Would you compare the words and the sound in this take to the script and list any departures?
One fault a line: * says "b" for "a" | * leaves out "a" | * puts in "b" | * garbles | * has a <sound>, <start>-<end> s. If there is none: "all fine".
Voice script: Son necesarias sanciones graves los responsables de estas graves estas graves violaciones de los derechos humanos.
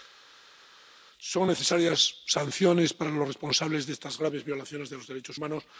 * says "para" for "graves"
* leaves out "estas graves"